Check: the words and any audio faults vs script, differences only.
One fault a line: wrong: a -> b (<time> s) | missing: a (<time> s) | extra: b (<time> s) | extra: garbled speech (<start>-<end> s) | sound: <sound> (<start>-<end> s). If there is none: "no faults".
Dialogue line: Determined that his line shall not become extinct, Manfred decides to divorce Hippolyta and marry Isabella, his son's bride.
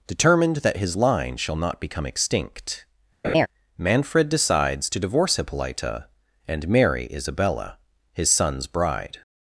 sound: laugh (3.2-3.5 s)